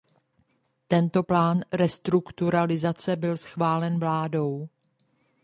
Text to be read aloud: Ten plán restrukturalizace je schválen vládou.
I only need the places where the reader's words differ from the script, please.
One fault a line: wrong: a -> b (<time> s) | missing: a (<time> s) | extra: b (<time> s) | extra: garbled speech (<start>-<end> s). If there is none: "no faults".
wrong: Ten -> Tento (0.9 s)
wrong: je -> byl (3.1 s)